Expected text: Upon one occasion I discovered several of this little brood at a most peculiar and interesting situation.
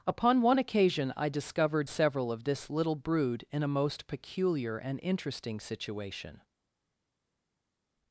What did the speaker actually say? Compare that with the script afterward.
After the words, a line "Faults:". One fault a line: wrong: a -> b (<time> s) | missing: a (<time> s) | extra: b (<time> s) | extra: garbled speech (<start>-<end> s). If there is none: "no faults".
Upon one occasion I discovered several of this little brood in a most peculiar and interesting situation.
Faults:
wrong: at -> in (3.5 s)